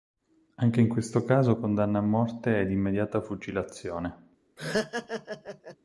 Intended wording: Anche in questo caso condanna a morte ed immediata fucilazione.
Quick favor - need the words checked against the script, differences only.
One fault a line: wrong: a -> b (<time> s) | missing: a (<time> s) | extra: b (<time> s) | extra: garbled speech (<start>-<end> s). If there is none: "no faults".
no faults